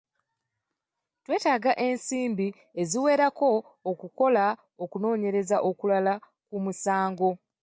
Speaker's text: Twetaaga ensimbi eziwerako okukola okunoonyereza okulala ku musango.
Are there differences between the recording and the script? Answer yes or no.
no